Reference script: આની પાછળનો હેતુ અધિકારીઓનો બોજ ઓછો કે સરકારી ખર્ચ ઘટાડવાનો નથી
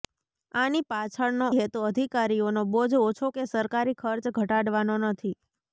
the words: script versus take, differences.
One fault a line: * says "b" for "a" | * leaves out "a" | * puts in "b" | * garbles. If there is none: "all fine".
all fine